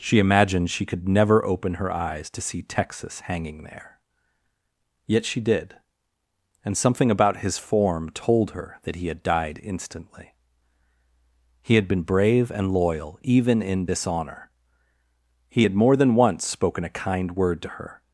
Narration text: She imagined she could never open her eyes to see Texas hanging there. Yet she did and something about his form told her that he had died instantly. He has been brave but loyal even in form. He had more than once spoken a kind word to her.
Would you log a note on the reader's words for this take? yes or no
yes